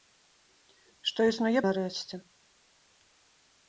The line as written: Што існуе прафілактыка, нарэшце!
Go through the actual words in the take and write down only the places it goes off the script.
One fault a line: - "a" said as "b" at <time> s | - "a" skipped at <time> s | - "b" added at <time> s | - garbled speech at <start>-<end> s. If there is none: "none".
- "прафілактыка" skipped at 1.6 s